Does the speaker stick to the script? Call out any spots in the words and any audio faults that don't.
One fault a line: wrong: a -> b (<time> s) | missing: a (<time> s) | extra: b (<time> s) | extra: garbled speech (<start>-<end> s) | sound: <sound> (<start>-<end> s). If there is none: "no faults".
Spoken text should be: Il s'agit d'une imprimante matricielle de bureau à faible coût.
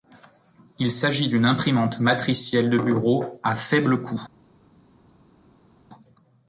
no faults